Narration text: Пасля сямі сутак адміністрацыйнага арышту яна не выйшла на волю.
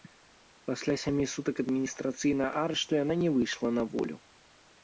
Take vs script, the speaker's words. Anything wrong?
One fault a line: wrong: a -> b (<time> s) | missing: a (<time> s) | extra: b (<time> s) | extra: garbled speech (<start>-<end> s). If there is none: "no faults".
no faults